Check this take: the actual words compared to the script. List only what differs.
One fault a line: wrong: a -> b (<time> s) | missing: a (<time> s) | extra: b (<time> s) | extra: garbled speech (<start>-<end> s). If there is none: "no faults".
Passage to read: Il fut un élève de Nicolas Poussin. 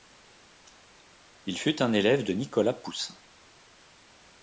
no faults